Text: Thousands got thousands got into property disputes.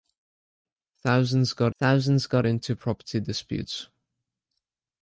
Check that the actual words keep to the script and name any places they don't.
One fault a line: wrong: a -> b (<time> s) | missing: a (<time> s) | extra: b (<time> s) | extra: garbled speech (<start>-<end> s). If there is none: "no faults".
no faults